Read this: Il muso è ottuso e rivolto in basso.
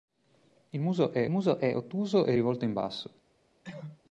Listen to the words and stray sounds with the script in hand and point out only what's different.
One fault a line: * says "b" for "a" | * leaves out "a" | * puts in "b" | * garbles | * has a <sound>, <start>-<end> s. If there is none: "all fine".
* puts in "muso è"
* has a cough, 3.6-4.0 s